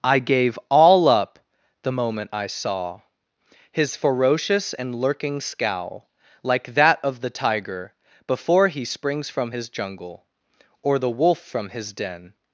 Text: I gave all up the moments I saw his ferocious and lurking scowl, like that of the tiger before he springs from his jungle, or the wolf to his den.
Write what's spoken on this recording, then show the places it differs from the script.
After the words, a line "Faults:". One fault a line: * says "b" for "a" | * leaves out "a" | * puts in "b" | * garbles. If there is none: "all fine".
I gave all up the moment I saw his ferocious and lurking scowl, like that of the tiger before he springs from his jungle, or the wolf from his den.
Faults:
* says "moment" for "moments"
* says "from" for "to"